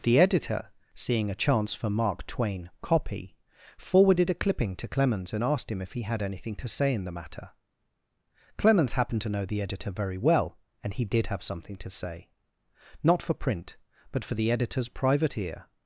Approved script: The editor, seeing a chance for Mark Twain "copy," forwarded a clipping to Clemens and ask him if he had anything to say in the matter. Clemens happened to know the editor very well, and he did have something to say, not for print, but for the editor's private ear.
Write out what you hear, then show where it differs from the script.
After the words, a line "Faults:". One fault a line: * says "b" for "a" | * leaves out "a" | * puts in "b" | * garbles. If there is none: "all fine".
The editor, seeing a chance for Mark Twain "copy," forwarded a clipping to Clemens and asked him if he had anything to say in the matter. Clemens happened to know the editor very well, and he did have something to say, not for print, but for the editor's private ear.
Faults:
* says "asked" for "ask"